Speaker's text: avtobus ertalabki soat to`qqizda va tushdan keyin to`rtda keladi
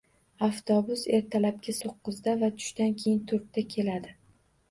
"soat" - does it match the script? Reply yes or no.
no